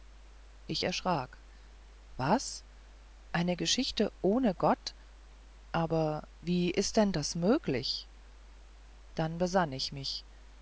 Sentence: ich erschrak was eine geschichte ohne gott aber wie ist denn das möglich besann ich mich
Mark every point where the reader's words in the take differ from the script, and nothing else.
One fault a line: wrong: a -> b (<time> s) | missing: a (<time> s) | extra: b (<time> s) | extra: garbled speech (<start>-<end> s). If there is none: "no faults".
extra: dann (9.2 s)